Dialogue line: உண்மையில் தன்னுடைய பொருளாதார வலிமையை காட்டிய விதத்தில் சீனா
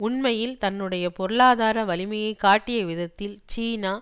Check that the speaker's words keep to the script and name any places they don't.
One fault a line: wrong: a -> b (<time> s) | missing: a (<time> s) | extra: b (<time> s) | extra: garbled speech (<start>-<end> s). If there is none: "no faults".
no faults